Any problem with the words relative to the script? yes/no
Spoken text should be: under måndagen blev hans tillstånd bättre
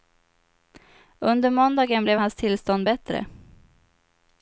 no